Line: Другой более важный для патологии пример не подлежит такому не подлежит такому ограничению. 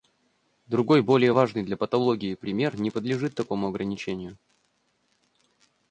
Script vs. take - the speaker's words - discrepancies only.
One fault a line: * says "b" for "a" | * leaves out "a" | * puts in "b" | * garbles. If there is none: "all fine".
* leaves out "не подлежит такому"